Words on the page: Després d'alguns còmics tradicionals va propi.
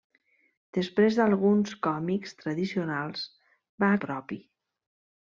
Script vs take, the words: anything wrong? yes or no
no